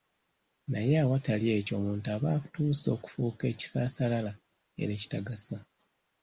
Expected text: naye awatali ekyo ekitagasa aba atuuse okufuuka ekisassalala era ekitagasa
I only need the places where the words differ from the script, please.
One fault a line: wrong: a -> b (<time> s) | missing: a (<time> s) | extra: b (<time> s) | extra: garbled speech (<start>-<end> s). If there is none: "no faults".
wrong: ekitagasa -> omuntu (1.8 s)